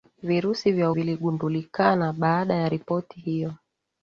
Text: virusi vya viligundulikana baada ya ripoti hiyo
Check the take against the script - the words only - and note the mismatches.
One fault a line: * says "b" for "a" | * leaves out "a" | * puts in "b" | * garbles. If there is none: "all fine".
all fine